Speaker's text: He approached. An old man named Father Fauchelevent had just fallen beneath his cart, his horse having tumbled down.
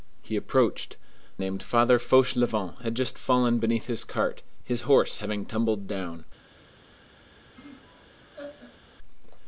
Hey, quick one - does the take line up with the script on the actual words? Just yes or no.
no